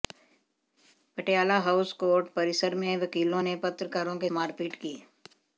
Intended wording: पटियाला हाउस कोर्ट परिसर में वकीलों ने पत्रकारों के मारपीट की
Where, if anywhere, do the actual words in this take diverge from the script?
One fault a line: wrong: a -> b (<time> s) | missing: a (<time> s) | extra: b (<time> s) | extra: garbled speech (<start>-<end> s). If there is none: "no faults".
no faults